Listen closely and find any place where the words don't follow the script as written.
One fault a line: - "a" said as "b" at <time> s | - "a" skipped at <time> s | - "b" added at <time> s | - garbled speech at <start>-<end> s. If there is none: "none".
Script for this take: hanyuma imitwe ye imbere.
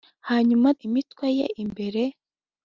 none